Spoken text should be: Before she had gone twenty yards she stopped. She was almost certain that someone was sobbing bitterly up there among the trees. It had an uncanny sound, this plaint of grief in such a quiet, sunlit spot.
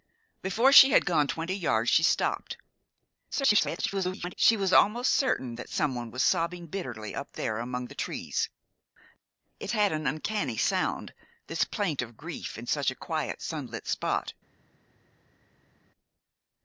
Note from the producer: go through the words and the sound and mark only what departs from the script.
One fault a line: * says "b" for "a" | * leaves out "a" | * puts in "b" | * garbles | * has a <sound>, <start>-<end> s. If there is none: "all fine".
* garbles